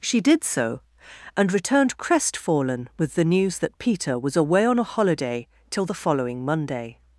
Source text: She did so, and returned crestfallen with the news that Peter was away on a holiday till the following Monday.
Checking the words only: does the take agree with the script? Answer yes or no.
yes